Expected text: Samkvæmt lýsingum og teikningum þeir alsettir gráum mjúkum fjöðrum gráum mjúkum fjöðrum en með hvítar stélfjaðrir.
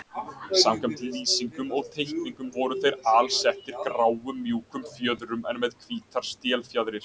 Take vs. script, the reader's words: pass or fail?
fail